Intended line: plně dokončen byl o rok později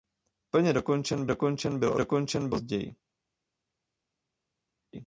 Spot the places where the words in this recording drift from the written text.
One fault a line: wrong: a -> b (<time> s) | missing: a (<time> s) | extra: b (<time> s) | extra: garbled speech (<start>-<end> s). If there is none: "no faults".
extra: dokončen (1.3 s)
wrong: rok -> dokončen (2.0 s)